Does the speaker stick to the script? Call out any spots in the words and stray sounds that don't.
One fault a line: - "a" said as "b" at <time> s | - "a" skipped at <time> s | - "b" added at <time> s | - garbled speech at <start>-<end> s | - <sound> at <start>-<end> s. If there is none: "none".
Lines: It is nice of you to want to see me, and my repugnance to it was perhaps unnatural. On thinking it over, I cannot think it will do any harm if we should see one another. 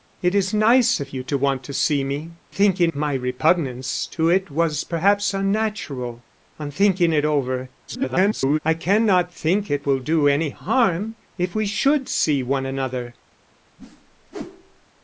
- "and" said as "thinking" at 2.5 s
- garbled speech at 7.9-8.6 s
- whoosh at 13.8-14.9 s